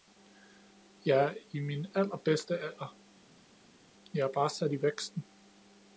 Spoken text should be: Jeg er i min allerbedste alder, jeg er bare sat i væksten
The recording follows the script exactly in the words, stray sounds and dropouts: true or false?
true